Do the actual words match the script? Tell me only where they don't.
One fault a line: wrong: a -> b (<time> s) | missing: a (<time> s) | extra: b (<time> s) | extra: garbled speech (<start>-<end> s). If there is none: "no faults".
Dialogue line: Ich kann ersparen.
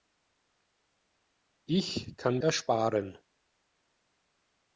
no faults